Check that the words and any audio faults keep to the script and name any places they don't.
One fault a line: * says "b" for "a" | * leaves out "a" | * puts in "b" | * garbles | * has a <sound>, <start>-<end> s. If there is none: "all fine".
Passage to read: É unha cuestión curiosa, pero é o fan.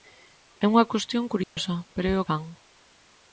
* has a dropout, 1.4-1.6 s